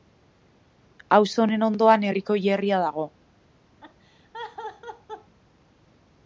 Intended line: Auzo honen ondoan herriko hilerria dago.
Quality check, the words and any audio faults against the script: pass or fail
fail